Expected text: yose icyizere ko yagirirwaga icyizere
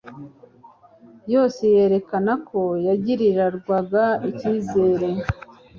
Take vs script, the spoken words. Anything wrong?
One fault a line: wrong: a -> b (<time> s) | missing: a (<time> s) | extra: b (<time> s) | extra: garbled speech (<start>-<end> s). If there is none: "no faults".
wrong: icyizere -> yerekana (1.8 s)